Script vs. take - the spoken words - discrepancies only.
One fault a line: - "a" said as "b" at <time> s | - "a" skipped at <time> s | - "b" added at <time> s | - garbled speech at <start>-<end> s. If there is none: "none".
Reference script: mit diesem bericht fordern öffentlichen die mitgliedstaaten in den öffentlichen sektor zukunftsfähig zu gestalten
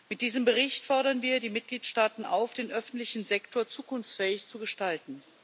- "öffentlichen" said as "wir" at 1.2 s
- "in" said as "auf" at 2.2 s